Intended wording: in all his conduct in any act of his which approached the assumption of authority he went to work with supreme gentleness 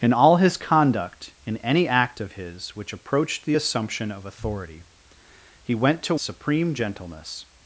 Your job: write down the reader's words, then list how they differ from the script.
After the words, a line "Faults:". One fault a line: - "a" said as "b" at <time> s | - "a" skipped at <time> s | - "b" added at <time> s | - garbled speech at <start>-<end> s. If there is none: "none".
in all his conduct in any act of his which approached the assumption of authority he went to supreme gentleness
Faults:
- "work with" skipped at 6.1 s